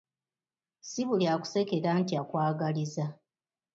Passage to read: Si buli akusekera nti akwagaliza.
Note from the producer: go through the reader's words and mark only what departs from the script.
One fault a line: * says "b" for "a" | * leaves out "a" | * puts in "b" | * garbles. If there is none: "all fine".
all fine